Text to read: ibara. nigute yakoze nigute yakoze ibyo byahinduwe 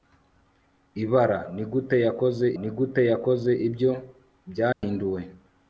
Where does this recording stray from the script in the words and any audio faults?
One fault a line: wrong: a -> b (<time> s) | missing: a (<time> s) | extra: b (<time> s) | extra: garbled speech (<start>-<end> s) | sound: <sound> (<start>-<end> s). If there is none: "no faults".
sound: dropout (4.7-4.8 s)